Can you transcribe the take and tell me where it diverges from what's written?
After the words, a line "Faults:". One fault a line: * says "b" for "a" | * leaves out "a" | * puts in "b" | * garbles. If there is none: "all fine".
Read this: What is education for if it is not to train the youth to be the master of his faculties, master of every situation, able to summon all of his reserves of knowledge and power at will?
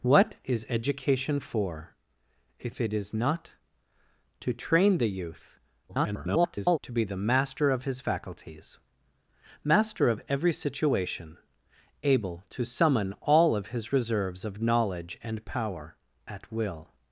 What is education for if it is not to train the youth [garbled] to be the master of his faculties, master of every situation, able to summon all of his reserves of knowledge and power at will?
Faults:
* garbles